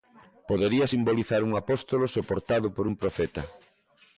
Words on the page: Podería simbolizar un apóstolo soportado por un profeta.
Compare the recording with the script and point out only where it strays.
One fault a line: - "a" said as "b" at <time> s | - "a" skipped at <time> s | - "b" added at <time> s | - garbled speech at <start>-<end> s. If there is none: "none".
none